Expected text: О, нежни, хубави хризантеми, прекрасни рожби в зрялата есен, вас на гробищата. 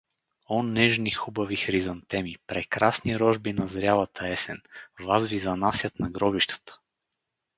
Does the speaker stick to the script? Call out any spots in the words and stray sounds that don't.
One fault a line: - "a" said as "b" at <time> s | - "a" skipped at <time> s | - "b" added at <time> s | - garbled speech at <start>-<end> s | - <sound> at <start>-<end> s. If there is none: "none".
- "в" said as "на" at 3.5 s
- "ви занасят" added at 5.3 s